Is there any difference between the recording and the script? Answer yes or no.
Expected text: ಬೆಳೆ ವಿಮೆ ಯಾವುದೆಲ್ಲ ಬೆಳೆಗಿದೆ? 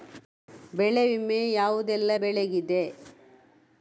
no